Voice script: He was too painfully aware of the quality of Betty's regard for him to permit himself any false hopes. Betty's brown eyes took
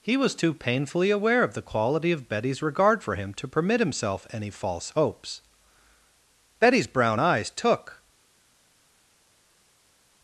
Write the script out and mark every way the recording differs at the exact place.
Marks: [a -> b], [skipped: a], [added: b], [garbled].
He was too painfully aware of the quality of Betty's regard for him to permit himself any false hopes. Betty's brown eyes took